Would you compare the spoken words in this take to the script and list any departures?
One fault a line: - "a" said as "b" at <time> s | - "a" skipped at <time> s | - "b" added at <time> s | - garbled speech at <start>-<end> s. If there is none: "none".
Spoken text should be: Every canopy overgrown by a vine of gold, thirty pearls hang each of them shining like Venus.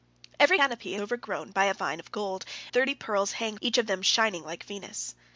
none